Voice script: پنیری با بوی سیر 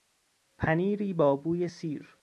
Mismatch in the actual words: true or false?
false